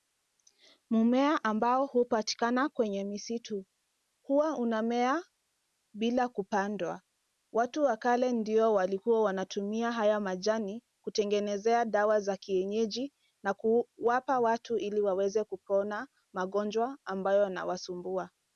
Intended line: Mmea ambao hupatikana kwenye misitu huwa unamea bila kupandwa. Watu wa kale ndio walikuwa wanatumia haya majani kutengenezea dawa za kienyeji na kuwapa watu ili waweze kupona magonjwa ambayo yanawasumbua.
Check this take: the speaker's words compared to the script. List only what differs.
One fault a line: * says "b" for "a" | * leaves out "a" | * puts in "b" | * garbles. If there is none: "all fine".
all fine